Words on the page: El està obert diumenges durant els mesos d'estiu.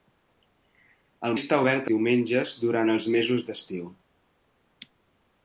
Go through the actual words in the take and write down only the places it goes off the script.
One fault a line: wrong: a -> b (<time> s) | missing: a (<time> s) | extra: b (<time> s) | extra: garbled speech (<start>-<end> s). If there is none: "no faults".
no faults